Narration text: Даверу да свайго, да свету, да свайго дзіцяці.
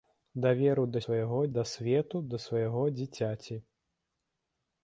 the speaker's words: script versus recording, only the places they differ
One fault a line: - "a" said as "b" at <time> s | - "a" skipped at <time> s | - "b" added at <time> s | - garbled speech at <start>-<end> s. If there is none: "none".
none